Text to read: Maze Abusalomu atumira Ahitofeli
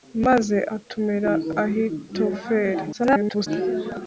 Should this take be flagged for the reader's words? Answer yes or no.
yes